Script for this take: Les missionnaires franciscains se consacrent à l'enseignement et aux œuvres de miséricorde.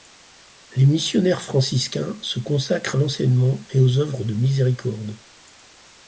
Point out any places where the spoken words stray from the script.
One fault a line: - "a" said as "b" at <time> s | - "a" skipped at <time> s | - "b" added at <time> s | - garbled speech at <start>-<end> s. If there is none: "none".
none